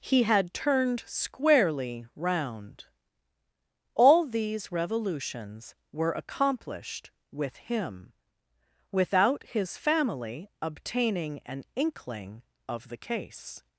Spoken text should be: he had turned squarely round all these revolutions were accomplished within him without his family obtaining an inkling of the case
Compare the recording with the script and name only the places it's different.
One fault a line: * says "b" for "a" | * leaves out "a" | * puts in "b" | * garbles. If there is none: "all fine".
* says "with" for "within"